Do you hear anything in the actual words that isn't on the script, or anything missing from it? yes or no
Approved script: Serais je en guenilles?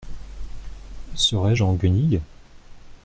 no